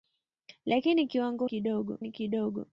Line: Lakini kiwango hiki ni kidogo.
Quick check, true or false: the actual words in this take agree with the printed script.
false